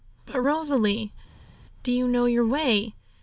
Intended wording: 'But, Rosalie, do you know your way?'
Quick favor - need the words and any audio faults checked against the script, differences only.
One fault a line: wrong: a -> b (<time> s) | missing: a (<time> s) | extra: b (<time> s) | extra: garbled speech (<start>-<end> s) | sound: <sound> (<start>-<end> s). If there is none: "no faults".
no faults